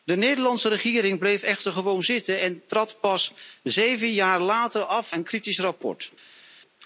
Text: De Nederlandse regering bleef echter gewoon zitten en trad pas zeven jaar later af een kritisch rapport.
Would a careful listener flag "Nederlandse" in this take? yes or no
no